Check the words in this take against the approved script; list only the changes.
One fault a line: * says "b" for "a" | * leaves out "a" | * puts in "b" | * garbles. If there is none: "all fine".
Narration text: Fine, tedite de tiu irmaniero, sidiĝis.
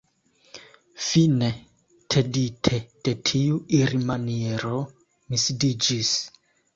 * puts in "mi"